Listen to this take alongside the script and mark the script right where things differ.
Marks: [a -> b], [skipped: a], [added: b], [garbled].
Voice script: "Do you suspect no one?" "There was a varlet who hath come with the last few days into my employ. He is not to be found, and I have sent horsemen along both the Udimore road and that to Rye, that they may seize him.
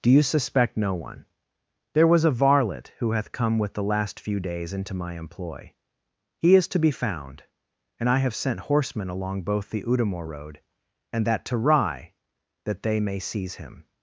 "Do you suspect no one?" "There was a varlet who hath come with the last few days into my employ. He is [skipped: not] to be found, and I have sent horsemen along both the Udimore road and that to Rye, that they may seize him.